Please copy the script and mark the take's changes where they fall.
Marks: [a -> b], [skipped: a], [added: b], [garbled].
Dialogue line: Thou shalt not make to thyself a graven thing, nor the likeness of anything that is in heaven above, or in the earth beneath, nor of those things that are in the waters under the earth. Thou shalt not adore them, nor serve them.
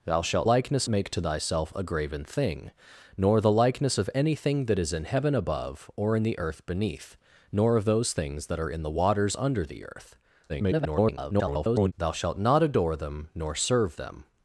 Thou shalt [not -> likeness] make to thyself a graven thing, nor the likeness of anything that is in heaven above, or in the earth beneath, nor of those things that are in the waters under the earth. [garbled] Thou shalt not adore them, nor serve them.